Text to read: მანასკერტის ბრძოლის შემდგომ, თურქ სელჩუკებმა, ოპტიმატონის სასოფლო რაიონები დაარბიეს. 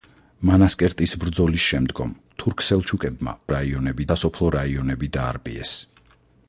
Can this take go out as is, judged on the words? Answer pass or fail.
fail